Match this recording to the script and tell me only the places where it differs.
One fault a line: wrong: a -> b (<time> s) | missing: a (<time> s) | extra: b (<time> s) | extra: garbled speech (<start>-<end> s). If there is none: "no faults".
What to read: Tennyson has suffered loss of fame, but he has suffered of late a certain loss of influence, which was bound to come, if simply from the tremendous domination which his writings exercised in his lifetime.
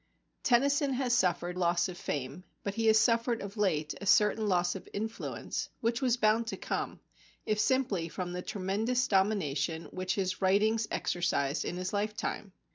no faults